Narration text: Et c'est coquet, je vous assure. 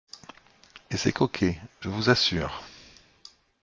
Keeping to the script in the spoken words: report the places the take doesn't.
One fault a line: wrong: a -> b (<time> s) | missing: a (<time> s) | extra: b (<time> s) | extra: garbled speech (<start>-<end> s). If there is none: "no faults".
no faults